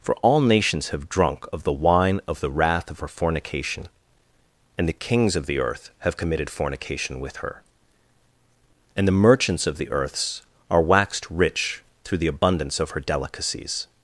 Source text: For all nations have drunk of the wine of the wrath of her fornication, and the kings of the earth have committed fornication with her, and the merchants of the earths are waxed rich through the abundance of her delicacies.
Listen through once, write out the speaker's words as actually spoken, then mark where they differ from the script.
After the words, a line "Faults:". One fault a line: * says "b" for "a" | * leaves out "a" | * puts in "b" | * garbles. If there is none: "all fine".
For all nations have drunk of the wine of the wrath of her fornication, and the kings of the earth have committed fornication with her, and the merchants of the earths are waxed rich through the abundance of her delicacies.
Faults:
all fine